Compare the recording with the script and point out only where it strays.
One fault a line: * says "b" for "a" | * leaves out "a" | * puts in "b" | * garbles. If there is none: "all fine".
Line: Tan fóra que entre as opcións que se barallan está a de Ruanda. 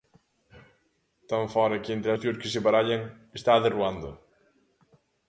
* leaves out "as"